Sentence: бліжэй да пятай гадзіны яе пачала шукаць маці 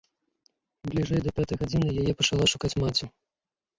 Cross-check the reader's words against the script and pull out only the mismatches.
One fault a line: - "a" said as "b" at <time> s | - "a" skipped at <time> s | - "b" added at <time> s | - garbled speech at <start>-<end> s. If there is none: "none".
none